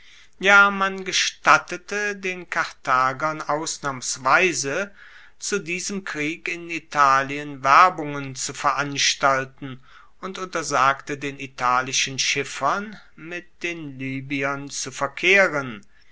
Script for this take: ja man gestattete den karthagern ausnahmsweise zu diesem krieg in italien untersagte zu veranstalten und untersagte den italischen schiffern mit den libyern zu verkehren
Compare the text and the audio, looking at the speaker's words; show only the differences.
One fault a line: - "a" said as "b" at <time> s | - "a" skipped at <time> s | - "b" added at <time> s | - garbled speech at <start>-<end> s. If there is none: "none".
- "untersagte" said as "werbungen" at 7.6 s